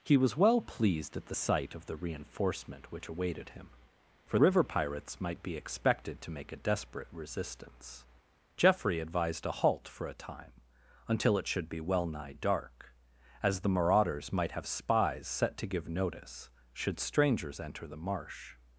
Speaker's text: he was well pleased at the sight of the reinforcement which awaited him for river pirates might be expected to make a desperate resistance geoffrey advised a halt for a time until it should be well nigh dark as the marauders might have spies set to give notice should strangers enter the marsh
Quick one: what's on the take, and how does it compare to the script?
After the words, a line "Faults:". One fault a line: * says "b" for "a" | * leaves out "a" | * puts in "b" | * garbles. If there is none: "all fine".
he was well pleased at the sight of the reinforcement which awaited him for river pirates might be expected to make a desperate resistance geoffrey advised a halt for a time until it should be well nigh dark as the marauders might have spies set to give notice should strangers enter the marsh
Faults:
all fine